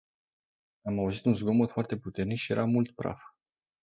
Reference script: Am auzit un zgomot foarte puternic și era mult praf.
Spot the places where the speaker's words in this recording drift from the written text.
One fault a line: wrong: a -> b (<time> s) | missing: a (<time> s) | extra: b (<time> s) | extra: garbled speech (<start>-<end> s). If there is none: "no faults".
no faults